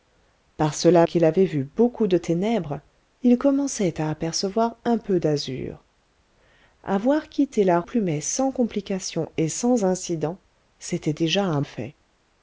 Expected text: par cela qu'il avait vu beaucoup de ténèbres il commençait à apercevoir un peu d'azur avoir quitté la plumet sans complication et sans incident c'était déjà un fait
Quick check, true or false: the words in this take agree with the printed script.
true